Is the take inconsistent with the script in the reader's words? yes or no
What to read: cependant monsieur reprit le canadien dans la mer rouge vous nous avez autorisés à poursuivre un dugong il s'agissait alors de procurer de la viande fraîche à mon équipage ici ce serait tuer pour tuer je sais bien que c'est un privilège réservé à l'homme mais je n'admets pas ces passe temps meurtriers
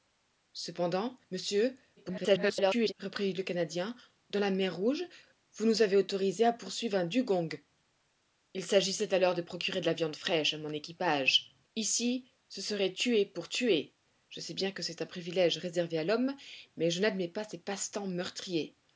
yes